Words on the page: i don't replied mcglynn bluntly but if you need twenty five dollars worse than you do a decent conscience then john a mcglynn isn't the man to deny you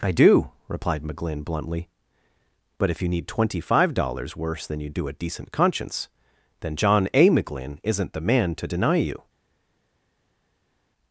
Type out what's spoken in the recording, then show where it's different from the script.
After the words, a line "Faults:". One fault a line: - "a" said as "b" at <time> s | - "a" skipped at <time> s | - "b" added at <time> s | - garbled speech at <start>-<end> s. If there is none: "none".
i do replied mcglynn bluntly but if you need twenty five dollars worse than you do a decent conscience then john a mcglynn isn't the man to deny you
Faults:
- "don't" said as "do" at 0.1 s